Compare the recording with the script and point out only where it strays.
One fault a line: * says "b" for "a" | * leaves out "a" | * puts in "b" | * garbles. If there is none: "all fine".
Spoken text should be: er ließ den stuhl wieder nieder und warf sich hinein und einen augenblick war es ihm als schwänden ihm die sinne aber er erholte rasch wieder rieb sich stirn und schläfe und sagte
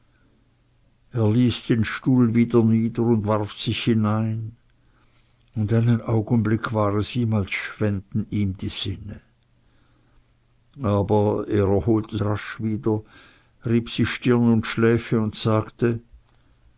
all fine